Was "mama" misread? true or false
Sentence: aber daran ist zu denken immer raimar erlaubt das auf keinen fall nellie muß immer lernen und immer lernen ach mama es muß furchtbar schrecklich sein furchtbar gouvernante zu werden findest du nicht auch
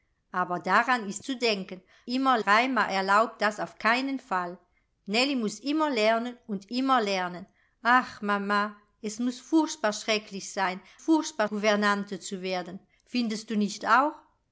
false